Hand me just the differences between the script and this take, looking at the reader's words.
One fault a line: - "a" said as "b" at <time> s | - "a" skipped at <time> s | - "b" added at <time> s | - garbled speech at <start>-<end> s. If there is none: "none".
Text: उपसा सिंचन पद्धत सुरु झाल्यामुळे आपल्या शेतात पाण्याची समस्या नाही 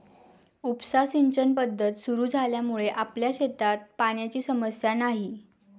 none